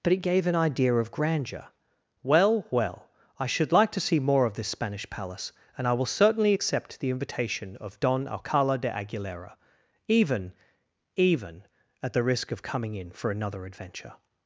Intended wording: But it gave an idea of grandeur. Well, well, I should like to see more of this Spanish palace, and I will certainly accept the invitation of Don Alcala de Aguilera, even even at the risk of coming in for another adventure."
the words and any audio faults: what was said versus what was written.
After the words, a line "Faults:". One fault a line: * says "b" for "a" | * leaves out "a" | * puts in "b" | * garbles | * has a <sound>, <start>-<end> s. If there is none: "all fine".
But it gave an idea of grandeur. Well, well, I should like to see more of this Spanish palace, and I will certainly accept the invitation of Don Alcala de Aguilera, even even at the risk of coming in for another adventure."
Faults:
all fine